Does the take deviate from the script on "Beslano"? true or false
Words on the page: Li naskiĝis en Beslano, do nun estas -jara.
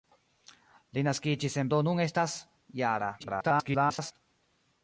true